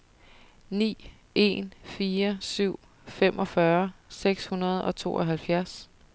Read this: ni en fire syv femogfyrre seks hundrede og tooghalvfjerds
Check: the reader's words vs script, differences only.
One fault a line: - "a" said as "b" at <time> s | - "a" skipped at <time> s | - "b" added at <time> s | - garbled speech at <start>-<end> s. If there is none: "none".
none